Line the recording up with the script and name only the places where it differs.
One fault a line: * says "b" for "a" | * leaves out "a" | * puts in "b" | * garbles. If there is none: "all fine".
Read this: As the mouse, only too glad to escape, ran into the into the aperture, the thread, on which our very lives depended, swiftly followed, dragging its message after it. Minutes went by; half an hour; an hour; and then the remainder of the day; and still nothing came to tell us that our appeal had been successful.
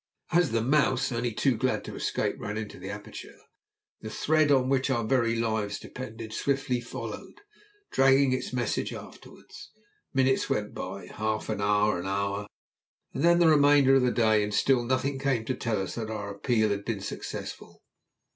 * leaves out "into the"